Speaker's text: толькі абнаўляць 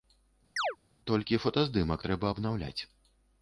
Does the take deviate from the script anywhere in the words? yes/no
yes